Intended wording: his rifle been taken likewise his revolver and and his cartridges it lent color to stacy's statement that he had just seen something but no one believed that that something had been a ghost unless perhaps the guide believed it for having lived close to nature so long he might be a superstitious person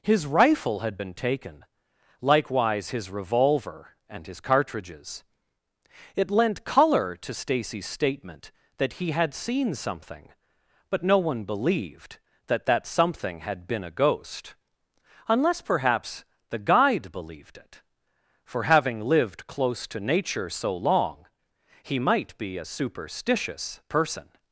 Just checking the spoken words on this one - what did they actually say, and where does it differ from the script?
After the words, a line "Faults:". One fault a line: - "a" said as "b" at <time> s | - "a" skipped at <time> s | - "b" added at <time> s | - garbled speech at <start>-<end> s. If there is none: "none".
his rifle had been taken likewise his revolver and his cartridges it lent color to stacy's statement that he had seen something but no one believed that that something had been a ghost unless perhaps the guide believed it for having lived close to nature so long he might be a superstitious person
Faults:
- "had" added at 0.8 s
- "and" skipped at 4.3 s
- "just" skipped at 9.3 s